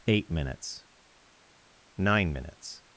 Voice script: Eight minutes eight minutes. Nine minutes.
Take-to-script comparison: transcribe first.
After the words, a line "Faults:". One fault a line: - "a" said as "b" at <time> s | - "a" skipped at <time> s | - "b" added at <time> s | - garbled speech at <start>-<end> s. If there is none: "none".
Eight minutes. Nine minutes.
Faults:
- "eight minutes" skipped at 0.8 s